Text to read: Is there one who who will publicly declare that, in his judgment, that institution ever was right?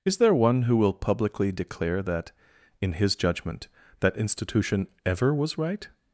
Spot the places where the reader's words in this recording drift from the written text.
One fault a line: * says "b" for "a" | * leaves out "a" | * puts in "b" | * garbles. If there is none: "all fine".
* leaves out "who"